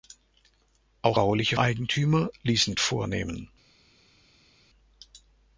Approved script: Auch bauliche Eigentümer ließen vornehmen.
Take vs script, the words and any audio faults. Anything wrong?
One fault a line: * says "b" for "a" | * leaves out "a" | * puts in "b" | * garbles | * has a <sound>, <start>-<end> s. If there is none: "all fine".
all fine